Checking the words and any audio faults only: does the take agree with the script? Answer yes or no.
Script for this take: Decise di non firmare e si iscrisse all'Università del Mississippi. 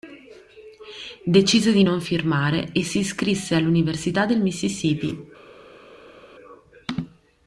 yes